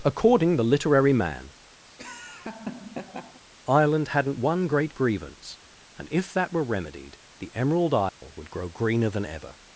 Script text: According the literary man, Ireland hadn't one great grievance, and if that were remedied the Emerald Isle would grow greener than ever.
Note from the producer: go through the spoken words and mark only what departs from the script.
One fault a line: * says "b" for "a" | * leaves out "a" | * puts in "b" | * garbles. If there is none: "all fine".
all fine